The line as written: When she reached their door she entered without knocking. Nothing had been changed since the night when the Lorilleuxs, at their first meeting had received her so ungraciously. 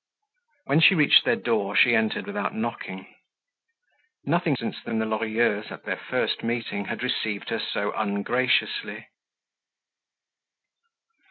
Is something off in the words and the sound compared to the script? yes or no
yes